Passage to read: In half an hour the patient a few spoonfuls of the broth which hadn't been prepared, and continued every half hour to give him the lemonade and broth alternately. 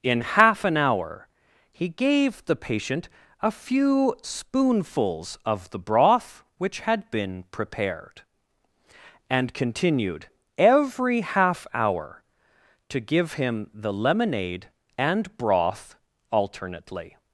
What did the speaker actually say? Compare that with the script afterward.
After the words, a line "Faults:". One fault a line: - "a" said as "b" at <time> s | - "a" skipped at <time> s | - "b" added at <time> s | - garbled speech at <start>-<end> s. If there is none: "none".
In half an hour he gave the patient a few spoonfuls of the broth which had been prepared, and continued every half hour to give him the lemonade and broth alternately.
Faults:
- "he gave" added at 1.7 s
- "hadn't" said as "had" at 6.8 s